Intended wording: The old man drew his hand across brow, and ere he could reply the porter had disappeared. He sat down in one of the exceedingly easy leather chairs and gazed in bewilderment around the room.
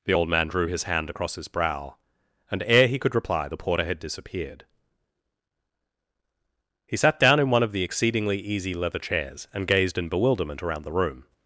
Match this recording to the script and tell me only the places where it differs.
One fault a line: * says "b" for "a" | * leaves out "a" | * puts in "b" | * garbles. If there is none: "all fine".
* puts in "his"